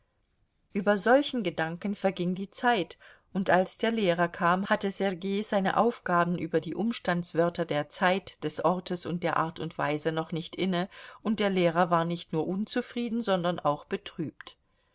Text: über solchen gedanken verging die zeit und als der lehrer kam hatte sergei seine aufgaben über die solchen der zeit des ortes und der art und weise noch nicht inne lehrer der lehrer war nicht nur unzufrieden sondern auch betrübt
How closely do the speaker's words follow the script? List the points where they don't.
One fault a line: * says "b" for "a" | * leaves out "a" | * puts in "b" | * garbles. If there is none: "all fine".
* says "umstandswörter" for "solchen"
* says "und" for "lehrer"